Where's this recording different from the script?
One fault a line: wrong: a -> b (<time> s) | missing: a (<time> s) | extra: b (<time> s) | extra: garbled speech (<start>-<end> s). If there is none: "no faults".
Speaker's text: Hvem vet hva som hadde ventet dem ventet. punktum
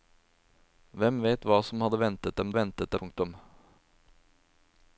no faults